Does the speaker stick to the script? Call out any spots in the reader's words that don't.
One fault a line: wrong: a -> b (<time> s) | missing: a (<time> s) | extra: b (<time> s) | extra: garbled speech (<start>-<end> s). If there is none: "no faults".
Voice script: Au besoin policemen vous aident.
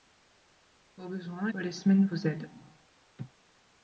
no faults